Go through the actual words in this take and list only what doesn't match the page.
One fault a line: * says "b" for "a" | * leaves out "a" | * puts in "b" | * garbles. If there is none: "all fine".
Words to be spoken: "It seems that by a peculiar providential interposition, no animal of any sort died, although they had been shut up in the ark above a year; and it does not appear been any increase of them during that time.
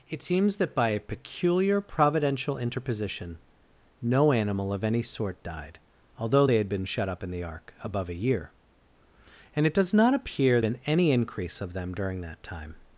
all fine